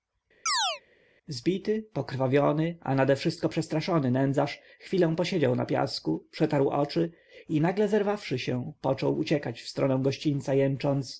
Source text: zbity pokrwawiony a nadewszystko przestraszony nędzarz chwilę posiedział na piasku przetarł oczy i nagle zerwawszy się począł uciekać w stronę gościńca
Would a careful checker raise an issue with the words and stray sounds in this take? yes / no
yes